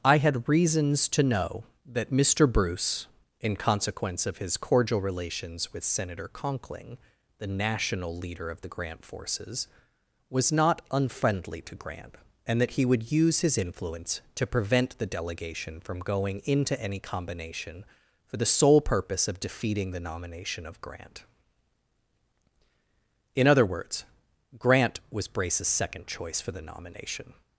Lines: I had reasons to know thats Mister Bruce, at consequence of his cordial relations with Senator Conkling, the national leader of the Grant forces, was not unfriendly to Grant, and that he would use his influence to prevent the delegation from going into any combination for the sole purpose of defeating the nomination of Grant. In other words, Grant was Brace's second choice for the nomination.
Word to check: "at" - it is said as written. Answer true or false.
false